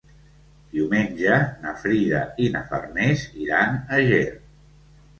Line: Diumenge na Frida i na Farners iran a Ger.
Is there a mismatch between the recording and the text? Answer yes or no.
no